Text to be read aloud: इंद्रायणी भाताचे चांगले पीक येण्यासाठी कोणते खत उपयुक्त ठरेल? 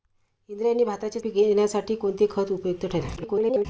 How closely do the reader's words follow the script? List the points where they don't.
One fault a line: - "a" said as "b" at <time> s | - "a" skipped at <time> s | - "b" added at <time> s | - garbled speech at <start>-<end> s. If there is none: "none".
- "चांगले" skipped at 1.2 s
- garbled speech at 3.2-3.7 s